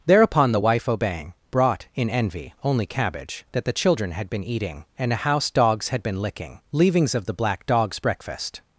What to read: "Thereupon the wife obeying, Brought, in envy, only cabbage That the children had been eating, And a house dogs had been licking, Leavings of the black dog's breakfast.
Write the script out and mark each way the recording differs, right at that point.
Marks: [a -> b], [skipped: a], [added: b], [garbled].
"Thereupon the wife obeying, Brought, in envy, only cabbage That the children had been eating, And a house dogs had been licking, Leavings of the black dog's breakfast.